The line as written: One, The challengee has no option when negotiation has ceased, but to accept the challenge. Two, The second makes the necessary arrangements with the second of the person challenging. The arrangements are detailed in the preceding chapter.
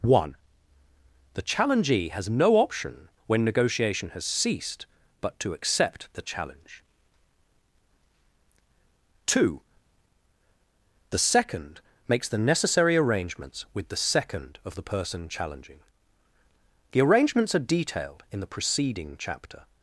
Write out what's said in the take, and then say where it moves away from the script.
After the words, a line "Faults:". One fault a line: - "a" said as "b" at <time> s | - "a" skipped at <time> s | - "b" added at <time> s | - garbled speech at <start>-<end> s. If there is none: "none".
One, The challengee has no option when negotiation has ceased, but to accept the challenge. Two, The second makes the necessary arrangements with the second of the person challenging. The arrangements are detailed in the preceding chapter.
Faults:
none